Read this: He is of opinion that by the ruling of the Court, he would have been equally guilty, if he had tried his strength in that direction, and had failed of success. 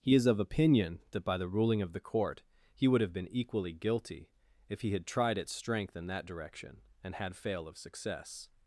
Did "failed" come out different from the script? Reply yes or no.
yes